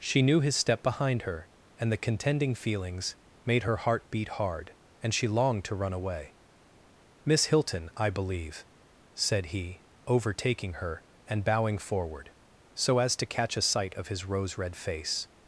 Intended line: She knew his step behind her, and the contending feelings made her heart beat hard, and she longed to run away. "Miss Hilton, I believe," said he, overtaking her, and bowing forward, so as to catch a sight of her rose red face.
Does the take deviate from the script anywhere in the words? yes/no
yes